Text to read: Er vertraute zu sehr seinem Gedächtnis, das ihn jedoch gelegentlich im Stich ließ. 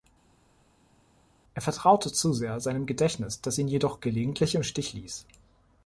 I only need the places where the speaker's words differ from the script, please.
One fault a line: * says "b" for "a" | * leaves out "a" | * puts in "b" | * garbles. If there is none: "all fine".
all fine